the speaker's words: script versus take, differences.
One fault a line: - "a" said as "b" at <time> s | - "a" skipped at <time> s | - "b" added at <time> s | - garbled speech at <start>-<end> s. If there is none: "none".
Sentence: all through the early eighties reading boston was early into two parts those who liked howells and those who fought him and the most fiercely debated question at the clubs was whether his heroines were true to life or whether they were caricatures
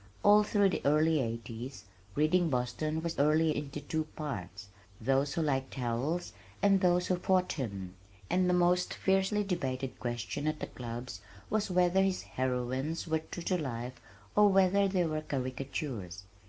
none